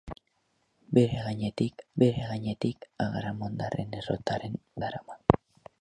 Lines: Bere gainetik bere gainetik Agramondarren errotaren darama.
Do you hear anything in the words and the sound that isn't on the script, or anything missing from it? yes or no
no